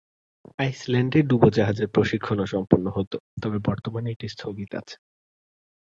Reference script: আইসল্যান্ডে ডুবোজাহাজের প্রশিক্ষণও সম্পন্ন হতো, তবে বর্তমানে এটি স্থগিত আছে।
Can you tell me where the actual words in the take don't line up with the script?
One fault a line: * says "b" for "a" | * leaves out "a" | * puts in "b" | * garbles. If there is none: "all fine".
all fine